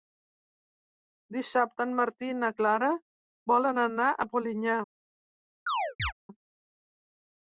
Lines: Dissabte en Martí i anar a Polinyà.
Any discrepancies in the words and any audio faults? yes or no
yes